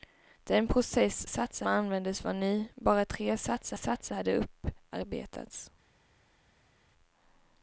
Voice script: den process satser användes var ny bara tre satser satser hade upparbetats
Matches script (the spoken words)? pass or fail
pass